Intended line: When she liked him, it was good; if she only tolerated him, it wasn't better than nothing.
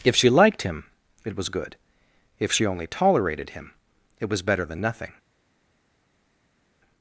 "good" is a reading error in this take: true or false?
false